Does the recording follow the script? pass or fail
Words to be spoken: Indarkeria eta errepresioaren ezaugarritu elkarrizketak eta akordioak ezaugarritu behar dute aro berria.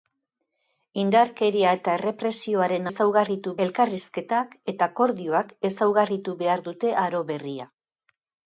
pass